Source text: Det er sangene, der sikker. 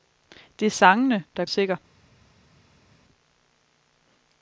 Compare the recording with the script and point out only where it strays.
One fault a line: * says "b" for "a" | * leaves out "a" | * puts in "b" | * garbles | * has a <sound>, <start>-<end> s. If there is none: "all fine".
all fine